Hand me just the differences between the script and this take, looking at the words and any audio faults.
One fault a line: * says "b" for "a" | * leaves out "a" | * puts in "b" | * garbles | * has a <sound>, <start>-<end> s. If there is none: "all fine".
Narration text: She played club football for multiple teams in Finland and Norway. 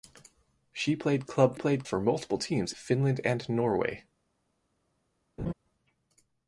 * says "played" for "football"
* leaves out "in"
* has a laugh, 5.4-5.5 s